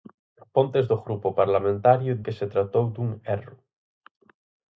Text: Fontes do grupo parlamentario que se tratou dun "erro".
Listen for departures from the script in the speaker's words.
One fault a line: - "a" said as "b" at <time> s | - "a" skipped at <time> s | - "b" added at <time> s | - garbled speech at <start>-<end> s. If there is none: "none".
none